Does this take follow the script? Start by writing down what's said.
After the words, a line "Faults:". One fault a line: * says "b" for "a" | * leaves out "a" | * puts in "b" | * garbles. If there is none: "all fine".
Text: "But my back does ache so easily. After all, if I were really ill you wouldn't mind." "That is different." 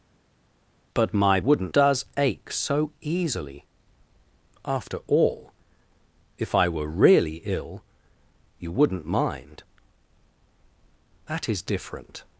"But my wouldn't does ache so easily. After all, if I were really ill you wouldn't mind." "That is different."
Faults:
* says "wouldn't" for "back"